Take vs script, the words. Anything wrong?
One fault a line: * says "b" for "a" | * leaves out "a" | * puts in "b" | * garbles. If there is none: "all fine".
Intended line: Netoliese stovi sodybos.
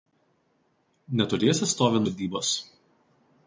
all fine